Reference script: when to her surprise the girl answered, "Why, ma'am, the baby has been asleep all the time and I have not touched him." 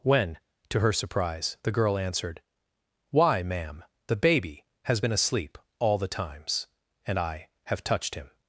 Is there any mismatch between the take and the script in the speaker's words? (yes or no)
yes